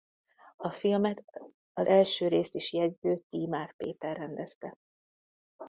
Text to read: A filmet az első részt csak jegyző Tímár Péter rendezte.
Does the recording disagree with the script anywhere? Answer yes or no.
yes